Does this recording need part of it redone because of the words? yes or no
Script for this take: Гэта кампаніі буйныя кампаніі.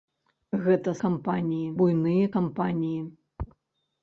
no